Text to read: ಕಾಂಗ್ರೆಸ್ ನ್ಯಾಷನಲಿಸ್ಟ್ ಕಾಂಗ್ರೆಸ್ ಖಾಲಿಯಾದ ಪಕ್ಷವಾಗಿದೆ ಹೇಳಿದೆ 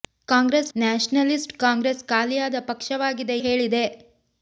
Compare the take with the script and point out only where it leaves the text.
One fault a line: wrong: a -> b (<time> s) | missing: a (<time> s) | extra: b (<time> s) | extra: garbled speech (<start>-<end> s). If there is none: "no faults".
no faults